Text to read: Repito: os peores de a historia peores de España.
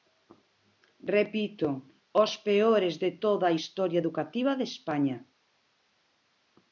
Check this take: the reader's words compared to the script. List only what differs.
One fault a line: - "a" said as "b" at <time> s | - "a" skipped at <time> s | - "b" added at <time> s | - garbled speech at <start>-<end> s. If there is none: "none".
- "toda" added at 3.2 s
- "peores" said as "educativa" at 4.0 s